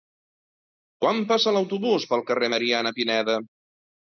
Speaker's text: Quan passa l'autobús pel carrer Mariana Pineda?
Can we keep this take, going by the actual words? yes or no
yes